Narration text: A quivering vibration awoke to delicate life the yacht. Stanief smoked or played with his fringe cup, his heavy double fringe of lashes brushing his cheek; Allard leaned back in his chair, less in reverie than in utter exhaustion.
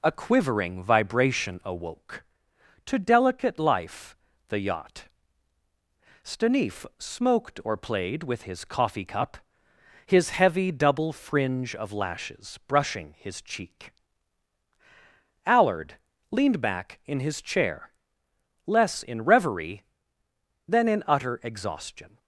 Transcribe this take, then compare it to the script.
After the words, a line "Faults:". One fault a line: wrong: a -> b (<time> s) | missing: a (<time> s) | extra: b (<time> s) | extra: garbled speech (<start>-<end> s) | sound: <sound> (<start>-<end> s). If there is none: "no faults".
A quivering vibration awoke to delicate life the yacht. Stanief smoked or played with his coffee cup, his heavy double fringe of lashes brushing his cheek; Allard leaned back in his chair, less in reverie than in utter exhaustion.
Faults:
wrong: fringe -> coffee (8.6 s)